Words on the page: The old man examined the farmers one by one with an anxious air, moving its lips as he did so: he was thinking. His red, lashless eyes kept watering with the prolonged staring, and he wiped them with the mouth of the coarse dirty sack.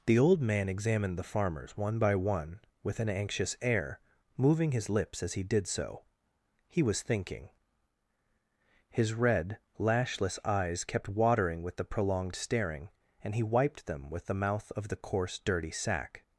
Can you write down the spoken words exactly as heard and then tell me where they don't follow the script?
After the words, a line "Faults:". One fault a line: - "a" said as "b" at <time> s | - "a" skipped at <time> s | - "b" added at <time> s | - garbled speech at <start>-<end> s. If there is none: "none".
The old man examined the farmers one by one with an anxious air, moving his lips as he did so: he was thinking. His red, lashless eyes kept watering with the prolonged staring, and he wiped them with the mouth of the coarse dirty sack.
Faults:
- "its" said as "his" at 4.7 s